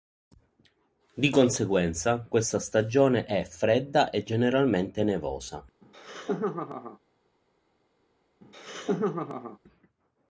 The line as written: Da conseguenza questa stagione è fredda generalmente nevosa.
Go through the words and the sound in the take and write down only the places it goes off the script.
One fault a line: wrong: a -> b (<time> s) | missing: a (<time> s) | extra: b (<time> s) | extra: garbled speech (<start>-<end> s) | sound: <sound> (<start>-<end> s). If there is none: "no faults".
wrong: Da -> Di (1.1 s)
extra: e (4.1 s)
sound: laugh (5.8-7.0 s)
sound: laugh (8.4-9.6 s)